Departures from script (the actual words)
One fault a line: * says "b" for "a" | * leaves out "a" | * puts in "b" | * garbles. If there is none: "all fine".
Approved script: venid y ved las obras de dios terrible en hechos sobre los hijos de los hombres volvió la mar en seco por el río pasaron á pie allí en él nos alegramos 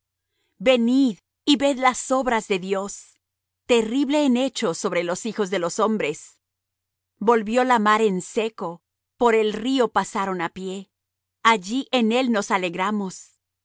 all fine